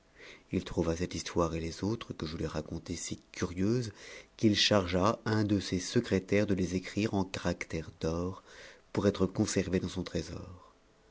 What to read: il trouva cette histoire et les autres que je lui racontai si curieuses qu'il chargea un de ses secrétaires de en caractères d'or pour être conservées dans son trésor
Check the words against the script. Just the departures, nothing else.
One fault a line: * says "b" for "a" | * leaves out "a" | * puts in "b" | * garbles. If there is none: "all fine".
* puts in "les écrire"